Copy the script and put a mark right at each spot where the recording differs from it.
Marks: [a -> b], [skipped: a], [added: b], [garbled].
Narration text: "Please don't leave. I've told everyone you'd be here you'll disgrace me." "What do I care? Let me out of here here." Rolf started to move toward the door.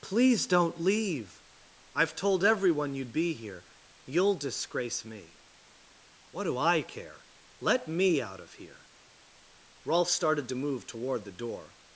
"Please don't leave. I've told everyone you'd be here you'll disgrace me." "What do I care? Let me out of here [skipped: here."] Rolf started to move toward the door.